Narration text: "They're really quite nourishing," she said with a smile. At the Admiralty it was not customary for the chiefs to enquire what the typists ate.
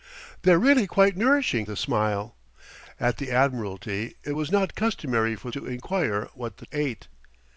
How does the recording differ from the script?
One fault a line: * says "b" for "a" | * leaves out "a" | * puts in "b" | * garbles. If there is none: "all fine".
* leaves out "she said with"
* leaves out "the chiefs"
* leaves out "typists"